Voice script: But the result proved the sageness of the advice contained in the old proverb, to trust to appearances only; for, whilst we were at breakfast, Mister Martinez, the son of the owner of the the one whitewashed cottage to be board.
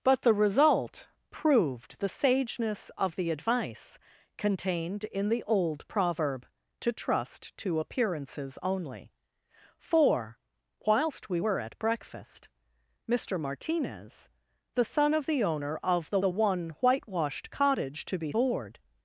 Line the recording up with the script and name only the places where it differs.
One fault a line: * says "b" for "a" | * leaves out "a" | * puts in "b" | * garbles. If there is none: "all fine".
all fine